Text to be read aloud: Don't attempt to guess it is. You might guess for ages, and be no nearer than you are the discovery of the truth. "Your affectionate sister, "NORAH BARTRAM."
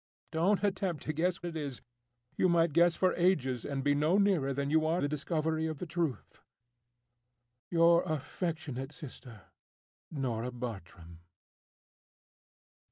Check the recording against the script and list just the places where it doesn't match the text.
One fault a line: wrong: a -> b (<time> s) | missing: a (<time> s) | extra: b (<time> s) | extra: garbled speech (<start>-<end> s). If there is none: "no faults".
no faults